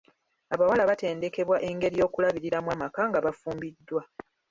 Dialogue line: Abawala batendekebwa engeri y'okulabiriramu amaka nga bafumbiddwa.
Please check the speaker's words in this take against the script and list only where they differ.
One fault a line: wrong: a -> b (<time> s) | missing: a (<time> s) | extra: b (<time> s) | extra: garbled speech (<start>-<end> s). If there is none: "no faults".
no faults